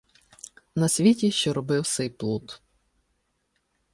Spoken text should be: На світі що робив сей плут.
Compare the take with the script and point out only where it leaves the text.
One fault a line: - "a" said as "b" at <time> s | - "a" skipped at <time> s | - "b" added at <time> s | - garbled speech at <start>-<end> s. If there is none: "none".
none